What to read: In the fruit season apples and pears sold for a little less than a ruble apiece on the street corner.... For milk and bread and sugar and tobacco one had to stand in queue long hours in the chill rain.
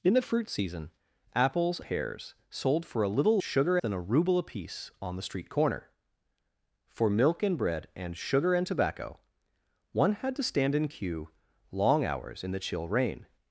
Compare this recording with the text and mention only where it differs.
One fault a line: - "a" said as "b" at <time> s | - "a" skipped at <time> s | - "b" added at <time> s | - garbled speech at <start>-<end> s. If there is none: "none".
- "and" skipped at 1.8 s
- "less" said as "sugar" at 3.4 s